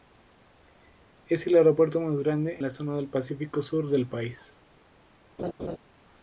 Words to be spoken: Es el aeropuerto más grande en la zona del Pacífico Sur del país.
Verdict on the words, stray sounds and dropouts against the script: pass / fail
fail